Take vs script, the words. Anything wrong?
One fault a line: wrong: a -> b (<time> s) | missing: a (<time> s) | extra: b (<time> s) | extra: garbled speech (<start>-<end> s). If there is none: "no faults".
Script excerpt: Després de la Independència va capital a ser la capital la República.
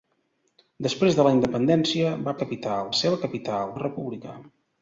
no faults